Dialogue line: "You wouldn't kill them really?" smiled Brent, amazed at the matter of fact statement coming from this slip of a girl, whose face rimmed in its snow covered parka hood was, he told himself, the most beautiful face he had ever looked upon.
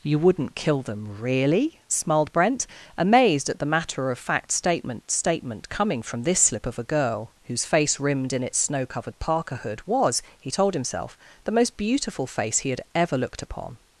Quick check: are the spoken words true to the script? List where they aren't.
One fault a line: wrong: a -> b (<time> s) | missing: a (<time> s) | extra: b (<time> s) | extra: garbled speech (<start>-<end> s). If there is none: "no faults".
extra: statement (5.1 s)